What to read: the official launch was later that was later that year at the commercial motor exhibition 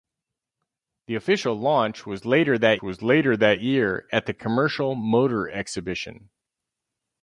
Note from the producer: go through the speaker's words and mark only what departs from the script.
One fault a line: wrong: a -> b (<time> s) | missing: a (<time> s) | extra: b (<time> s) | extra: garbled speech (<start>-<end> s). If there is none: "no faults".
no faults